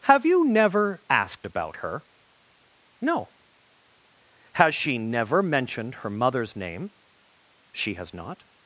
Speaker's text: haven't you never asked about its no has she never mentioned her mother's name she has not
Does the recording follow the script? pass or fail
fail